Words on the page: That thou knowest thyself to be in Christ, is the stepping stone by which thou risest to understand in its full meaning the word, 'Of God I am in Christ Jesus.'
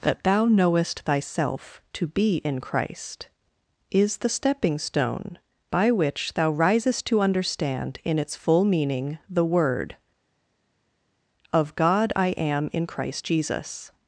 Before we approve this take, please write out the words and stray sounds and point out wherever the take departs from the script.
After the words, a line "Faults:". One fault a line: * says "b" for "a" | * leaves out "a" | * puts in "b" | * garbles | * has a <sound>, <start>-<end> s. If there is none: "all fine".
That thou knowest thyself to be in Christ, is the stepping stone by which thou risest to understand in its full meaning the word, 'Of God I am in Christ Jesus.'
Faults:
all fine